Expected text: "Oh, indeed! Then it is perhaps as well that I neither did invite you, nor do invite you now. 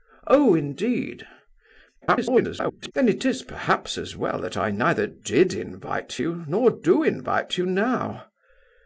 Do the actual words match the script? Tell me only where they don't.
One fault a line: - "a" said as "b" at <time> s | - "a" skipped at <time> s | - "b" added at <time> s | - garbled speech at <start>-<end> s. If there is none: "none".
- garbled speech at 2.0-2.9 s